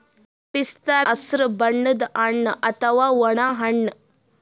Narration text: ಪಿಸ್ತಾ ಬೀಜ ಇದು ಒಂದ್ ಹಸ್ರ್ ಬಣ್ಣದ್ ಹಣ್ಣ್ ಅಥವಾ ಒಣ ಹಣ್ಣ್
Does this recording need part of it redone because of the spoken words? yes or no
yes